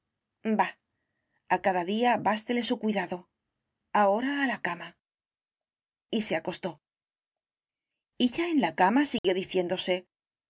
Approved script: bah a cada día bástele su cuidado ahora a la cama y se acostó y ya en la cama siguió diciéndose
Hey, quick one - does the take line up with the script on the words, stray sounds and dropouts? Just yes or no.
no